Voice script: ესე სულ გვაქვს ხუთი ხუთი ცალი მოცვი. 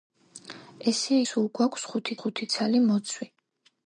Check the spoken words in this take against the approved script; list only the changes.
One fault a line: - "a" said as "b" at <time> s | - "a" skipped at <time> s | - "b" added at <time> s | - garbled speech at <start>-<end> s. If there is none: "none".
none